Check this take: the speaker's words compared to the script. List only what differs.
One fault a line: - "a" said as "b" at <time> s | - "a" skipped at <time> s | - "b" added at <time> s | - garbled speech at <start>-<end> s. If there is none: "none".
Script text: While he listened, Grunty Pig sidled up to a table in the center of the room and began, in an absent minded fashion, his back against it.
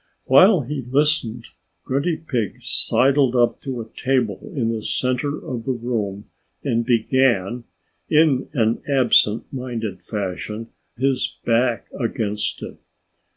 none